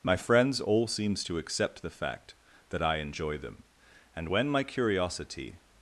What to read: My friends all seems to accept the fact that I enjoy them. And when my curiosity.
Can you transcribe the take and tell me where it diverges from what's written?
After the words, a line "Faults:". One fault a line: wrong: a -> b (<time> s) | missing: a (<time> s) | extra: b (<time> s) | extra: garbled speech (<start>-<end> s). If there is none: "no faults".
My friends all seems to accept the fact that I enjoy them. And when my curiosity.
Faults:
no faults